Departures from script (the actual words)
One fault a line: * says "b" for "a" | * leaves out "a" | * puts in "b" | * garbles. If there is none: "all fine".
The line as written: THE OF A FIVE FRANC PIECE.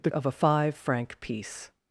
all fine